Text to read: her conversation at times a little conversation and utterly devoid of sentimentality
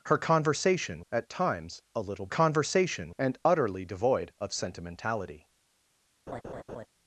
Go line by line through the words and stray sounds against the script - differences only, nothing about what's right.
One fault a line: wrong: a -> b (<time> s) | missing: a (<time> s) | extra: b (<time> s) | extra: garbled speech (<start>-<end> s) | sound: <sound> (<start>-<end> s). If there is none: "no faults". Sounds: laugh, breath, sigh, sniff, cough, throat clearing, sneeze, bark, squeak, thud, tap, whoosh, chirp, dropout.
sound: laugh (6.3-6.9 s)